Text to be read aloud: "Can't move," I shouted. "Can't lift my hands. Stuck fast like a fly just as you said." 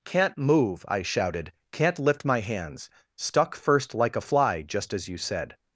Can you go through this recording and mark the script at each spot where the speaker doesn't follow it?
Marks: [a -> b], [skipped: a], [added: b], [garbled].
"Can't move," I shouted. "Can't lift my hands. Stuck [fast -> first] like a fly just as you said."